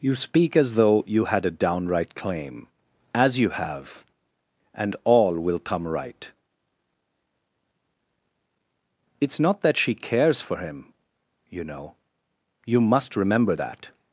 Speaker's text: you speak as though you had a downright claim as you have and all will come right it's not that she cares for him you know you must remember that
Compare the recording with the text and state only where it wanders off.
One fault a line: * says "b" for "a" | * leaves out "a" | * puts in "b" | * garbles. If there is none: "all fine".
all fine